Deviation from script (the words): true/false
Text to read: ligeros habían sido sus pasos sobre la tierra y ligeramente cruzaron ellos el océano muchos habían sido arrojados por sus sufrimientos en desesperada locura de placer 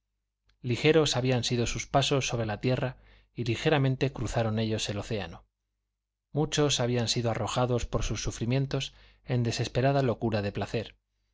false